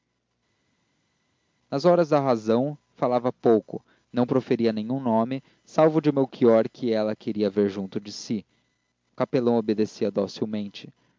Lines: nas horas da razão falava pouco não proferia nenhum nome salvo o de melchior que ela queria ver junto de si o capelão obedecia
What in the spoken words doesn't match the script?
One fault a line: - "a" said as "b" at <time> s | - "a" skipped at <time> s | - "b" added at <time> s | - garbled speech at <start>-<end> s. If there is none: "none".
none